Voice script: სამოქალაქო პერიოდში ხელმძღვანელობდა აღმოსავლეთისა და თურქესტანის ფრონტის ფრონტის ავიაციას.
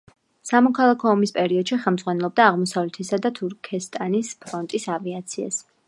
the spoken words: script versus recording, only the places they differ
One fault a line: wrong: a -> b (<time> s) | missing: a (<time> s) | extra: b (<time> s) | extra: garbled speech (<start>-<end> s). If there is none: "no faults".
extra: ომის (1.1 s)
missing: ფრონტის (4.9 s)